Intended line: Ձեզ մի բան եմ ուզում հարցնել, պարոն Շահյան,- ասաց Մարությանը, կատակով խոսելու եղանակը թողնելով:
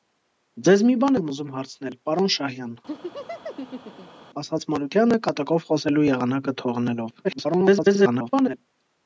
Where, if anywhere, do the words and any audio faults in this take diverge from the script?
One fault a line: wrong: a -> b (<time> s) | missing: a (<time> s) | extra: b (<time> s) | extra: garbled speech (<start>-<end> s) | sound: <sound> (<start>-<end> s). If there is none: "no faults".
sound: laugh (2.9-4.3 s)
extra: garbled speech (7.2-8.6 s)